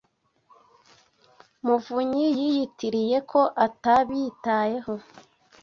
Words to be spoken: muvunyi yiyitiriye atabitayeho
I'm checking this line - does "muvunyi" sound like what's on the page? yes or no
yes